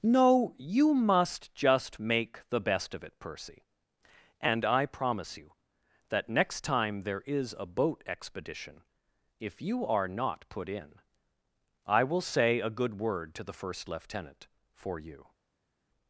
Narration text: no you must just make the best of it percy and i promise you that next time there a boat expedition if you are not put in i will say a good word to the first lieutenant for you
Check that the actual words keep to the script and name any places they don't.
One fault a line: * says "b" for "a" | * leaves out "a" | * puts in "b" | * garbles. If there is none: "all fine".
* puts in "is"